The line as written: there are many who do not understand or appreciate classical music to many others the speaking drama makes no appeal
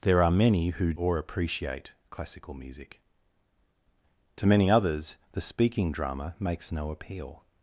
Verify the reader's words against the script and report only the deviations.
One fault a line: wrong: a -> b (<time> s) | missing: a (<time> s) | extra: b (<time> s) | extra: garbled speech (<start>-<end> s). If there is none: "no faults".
missing: do not understand (0.9 s)